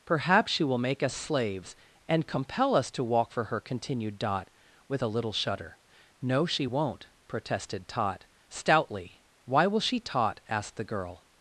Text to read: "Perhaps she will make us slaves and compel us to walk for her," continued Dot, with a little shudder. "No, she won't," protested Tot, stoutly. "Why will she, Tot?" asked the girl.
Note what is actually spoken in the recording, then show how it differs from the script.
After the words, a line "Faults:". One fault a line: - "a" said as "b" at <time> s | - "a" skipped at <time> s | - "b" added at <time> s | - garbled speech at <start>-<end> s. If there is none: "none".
"Perhaps she will make us slaves and compel us to walk for her," continued Dot, with a little shudder. "No, she won't," protested Tot, stoutly. "Why will she, Tot?" asked the girl.
Faults:
none